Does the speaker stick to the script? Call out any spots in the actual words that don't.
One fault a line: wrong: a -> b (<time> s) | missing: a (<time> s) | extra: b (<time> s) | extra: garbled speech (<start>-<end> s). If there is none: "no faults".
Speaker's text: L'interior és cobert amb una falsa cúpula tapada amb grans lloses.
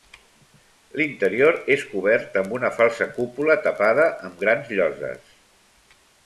no faults